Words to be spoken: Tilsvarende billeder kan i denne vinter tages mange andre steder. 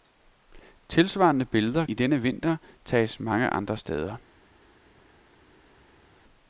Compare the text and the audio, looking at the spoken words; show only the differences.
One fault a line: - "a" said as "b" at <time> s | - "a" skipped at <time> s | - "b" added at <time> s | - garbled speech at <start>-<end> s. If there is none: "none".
- "kan" skipped at 1.9 s